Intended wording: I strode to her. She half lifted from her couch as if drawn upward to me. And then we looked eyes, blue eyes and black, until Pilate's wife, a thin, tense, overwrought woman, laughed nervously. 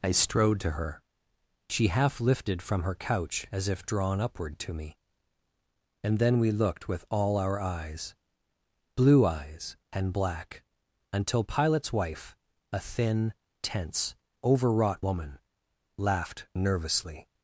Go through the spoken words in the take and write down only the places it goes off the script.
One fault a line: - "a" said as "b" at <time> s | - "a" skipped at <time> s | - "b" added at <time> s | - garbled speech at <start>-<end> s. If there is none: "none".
- "with all our" added at 6.9 s